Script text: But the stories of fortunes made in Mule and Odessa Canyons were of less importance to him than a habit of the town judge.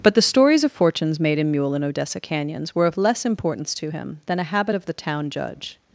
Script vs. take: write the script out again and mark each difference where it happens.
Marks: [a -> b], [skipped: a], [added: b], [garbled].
But the stories of fortunes made in Mule and Odessa Canyons were of less importance to him than a habit of the town judge.